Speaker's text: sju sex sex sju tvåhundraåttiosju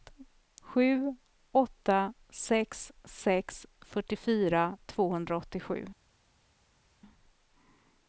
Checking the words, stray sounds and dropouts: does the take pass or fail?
fail